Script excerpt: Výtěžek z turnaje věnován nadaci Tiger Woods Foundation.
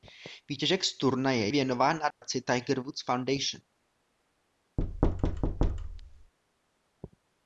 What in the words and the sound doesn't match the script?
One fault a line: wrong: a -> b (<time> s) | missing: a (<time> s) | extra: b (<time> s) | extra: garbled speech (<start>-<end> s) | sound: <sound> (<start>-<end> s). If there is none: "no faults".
sound: dropout (2.1-2.2 s)
sound: thud (4.8-6.3 s)